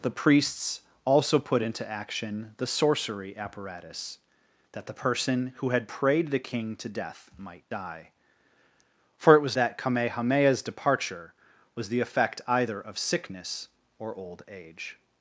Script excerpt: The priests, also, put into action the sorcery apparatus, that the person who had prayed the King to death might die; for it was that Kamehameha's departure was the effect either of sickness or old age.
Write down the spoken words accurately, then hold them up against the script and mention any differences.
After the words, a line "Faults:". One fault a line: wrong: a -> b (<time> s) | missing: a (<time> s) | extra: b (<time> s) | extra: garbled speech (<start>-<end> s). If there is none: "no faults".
The priests, also, put into action the sorcery apparatus, that the person who had prayed the King to death might die; for it was that Kamehameha's departure was the effect either of sickness or old age.
Faults:
no faults